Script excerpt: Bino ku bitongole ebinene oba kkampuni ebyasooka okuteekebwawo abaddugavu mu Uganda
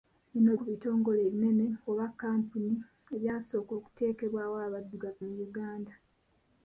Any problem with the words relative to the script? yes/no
no